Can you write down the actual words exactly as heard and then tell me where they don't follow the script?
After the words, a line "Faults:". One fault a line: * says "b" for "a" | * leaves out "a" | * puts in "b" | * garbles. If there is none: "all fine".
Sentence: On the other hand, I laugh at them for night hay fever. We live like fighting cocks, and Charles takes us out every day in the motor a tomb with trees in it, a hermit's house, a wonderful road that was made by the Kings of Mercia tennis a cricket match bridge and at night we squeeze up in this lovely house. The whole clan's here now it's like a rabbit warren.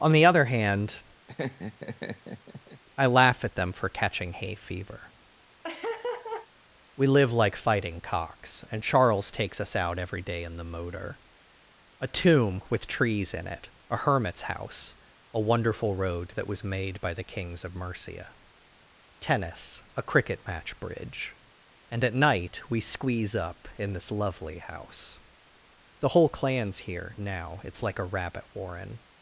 On the other hand, I laugh at them for catching hay fever. We live like fighting cocks, and Charles takes us out every day in the motor a tomb with trees in it, a hermit's house, a wonderful road that was made by the Kings of Mercia tennis a cricket match bridge and at night we squeeze up in this lovely house. The whole clan's here now it's like a rabbit warren.
Faults:
* says "catching" for "night"